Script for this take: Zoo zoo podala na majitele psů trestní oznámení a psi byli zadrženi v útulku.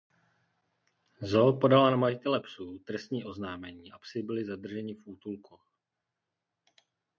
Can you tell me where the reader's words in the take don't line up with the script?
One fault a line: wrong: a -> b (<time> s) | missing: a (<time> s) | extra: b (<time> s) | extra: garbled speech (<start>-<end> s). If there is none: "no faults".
missing: zoo (1.6 s)